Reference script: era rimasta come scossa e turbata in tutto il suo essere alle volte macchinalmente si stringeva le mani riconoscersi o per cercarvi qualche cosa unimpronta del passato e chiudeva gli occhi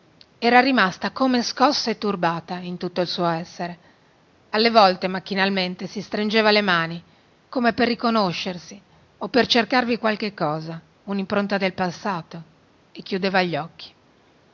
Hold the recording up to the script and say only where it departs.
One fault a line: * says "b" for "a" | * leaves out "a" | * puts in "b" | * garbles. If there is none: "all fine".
* puts in "come per"